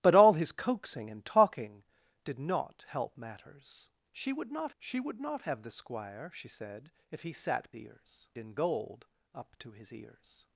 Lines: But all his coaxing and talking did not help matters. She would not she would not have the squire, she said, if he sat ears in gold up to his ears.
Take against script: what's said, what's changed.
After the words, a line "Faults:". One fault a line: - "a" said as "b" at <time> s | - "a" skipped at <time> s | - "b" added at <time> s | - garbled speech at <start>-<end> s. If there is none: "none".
But all his coaxing and talking did not help matters. She would not she would not have the squire, she said, if he sat ears in gold up to his ears.
Faults:
none